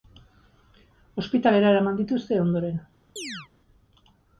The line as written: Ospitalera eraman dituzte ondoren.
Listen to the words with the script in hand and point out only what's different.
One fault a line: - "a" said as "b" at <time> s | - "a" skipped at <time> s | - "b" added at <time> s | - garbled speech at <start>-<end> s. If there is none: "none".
none